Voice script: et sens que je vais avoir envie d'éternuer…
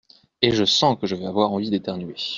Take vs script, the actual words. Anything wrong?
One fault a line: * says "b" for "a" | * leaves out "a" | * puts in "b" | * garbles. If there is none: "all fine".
* puts in "je"